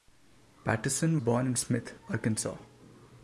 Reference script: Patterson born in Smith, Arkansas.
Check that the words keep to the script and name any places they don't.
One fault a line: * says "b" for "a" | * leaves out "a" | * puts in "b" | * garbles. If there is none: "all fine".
all fine